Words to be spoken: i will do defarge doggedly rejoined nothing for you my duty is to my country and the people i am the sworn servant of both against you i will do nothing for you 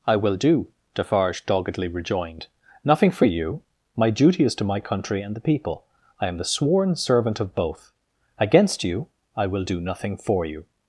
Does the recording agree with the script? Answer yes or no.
yes